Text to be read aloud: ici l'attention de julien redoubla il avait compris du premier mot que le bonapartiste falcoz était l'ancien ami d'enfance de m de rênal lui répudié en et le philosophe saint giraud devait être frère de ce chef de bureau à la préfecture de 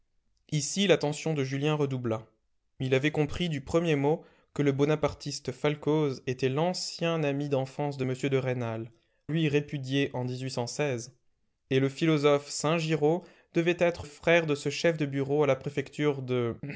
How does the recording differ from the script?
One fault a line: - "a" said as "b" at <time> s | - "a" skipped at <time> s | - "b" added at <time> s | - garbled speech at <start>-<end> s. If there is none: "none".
none